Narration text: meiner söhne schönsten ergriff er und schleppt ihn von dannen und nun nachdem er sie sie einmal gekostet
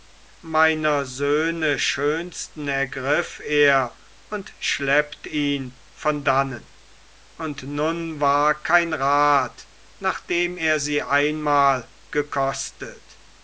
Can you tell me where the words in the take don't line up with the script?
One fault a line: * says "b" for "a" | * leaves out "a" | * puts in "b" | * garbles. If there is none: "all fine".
* puts in "war kein rat"
* leaves out "sie"